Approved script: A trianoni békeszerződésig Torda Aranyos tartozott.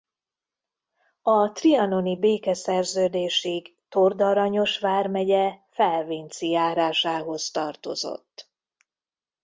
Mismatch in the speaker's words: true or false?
true